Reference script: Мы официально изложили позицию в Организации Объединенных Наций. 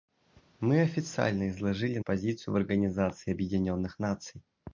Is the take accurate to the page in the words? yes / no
yes